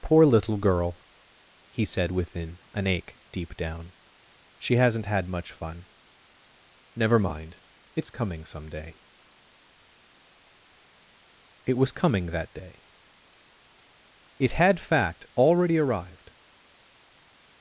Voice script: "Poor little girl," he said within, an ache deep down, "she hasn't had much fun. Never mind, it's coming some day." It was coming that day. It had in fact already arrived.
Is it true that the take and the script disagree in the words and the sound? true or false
true